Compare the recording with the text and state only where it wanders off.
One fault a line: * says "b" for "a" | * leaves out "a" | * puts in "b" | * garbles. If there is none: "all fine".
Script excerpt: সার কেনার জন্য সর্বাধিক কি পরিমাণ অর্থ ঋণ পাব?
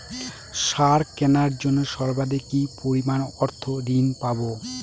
all fine